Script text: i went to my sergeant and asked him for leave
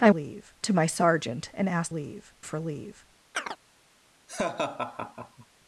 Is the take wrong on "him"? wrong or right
wrong